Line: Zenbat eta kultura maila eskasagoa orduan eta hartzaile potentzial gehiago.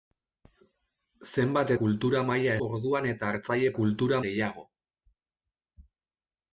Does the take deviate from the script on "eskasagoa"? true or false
true